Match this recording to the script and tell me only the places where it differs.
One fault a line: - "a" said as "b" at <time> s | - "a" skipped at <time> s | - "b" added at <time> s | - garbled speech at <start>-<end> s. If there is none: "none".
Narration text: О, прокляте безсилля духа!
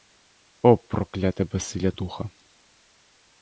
none